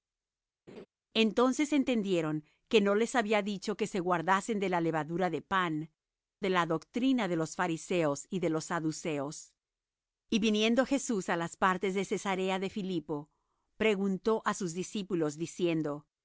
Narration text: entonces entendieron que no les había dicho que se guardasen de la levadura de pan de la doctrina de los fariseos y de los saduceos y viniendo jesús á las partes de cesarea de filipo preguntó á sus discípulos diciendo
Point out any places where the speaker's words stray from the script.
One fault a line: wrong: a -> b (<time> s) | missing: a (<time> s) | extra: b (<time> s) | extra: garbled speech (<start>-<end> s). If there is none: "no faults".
no faults